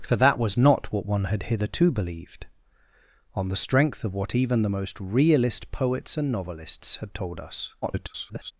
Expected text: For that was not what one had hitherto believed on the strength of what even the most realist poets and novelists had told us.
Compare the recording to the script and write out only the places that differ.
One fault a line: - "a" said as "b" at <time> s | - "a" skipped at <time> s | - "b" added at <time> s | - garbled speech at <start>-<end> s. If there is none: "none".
- garbled speech at 7.8-8.5 s